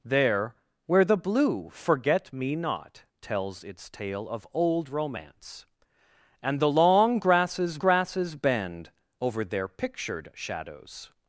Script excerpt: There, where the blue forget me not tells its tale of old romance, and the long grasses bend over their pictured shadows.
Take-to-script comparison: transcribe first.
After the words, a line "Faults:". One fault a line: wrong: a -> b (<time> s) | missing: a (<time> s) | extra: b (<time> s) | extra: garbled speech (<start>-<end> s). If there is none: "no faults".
There, where the blue forget me not tells its tale of old romance, and the long grasses grasses bend over their pictured shadows.
Faults:
extra: grasses (7.8 s)